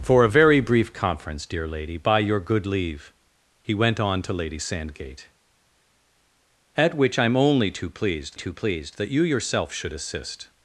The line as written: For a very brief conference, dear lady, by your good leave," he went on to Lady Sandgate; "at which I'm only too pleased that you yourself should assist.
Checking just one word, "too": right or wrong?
right